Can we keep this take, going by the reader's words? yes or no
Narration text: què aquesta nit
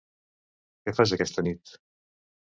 no